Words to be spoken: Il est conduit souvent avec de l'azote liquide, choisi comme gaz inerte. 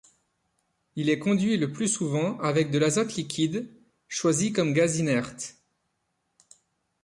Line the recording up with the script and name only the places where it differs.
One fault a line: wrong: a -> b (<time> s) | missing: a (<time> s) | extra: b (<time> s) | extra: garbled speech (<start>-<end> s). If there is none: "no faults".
extra: le plus (1.6 s)